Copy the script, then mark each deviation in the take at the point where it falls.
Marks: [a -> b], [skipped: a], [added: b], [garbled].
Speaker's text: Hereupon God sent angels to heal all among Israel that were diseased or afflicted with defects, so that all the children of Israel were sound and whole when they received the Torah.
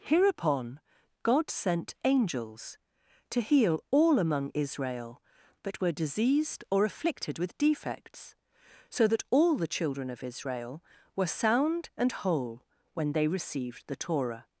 Hereupon God sent angels to heal all among Israel that were diseased or afflicted with defects, so that all the children of Israel were sound and whole when they received the Torah.